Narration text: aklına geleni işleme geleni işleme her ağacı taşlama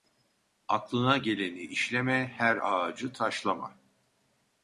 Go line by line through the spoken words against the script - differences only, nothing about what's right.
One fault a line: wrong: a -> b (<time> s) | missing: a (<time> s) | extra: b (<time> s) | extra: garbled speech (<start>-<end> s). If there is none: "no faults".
missing: geleni işleme (2.3 s)